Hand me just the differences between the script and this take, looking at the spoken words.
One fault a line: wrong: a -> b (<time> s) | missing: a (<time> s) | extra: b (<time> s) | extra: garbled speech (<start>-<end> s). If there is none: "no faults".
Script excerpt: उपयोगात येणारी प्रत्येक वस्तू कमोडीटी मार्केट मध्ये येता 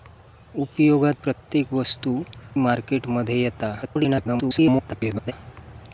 missing: येणारी (1.2 s)
missing: कमोडीटी (2.2 s)
extra: garbled speech (3.8-5.3 s)